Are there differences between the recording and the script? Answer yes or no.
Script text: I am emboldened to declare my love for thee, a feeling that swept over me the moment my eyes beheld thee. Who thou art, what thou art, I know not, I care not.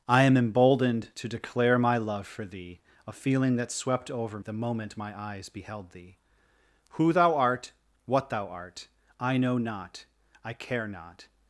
yes